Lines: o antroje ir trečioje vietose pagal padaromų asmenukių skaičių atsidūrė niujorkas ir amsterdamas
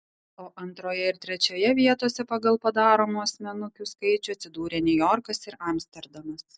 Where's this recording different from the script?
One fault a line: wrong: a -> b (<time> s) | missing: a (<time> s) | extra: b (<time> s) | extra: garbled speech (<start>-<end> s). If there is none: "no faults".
no faults